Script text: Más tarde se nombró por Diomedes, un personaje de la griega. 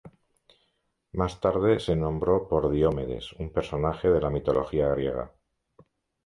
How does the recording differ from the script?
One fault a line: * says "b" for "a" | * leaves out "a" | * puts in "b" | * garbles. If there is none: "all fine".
* puts in "mitología"